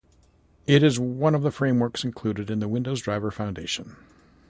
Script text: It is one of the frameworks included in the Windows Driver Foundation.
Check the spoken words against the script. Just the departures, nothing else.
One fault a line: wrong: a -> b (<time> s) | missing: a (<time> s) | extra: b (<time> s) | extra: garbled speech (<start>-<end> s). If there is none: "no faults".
no faults